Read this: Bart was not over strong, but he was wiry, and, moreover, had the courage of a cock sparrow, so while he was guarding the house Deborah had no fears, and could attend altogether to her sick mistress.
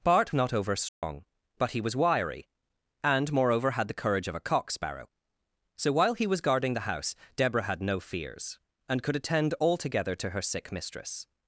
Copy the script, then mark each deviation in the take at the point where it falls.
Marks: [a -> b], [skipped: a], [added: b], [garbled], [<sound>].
Bart [skipped: was] not over strong, [dropout] but he was wiry, and, moreover, had the courage of a cock sparrow, so while he was guarding the house Deborah had no fears, and could attend altogether to her sick mistress.